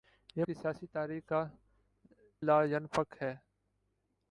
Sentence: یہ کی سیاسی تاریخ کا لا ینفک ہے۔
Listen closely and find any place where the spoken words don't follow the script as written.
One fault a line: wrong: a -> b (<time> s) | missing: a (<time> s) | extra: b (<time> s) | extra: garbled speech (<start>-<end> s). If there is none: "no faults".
no faults